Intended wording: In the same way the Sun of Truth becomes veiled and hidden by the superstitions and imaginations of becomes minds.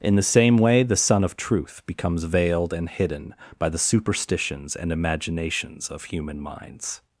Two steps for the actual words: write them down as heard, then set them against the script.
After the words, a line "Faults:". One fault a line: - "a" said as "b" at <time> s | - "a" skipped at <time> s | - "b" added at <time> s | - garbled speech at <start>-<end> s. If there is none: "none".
In the same way the Sun of Truth becomes veiled and hidden by the superstitions and imaginations of human minds.
Faults:
- "becomes" said as "human" at 6.0 s